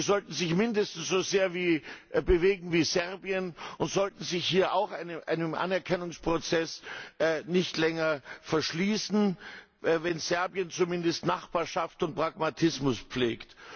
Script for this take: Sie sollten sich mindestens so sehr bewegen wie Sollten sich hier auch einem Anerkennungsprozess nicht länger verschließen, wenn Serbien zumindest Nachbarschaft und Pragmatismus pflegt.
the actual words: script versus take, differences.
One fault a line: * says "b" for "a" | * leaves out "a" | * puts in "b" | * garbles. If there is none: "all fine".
* puts in "Serbien und"